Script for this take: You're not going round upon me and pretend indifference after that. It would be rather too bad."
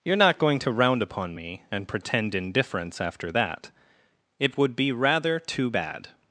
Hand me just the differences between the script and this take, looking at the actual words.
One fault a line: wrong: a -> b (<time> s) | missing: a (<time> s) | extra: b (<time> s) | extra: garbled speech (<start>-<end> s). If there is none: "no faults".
extra: to (0.6 s)